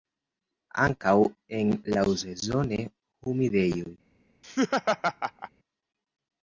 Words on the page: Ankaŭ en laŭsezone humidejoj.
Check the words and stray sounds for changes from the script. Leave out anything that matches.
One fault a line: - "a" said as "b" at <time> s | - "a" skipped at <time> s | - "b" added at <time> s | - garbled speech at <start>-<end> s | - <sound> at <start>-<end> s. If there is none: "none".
- laugh at 4.4-5.5 s